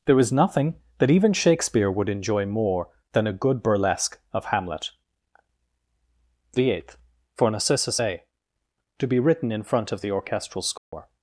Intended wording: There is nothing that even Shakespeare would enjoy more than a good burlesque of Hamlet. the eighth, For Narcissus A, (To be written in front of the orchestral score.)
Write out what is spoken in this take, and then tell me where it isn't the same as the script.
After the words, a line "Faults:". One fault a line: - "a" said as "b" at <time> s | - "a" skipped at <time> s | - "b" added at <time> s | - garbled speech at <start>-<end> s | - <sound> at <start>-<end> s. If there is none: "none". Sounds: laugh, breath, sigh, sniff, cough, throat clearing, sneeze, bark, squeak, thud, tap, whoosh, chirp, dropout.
There is nothing that even Shakespeare would enjoy more than a good burlesque of Hamlet. the eighth, For Narcissus A, (To be written in front of the orchestral score.)
Faults:
- dropout at 10.8-10.9 s